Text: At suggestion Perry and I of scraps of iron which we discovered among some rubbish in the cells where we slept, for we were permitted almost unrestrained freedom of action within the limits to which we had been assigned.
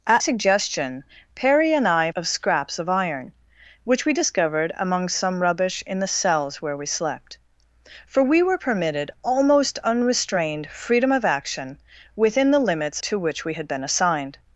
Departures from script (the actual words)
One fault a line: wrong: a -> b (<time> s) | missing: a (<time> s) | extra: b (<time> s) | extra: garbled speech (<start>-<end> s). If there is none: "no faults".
no faults